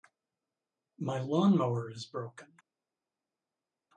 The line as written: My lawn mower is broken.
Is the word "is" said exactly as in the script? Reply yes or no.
yes